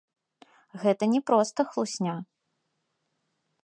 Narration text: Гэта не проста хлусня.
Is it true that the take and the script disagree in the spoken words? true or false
false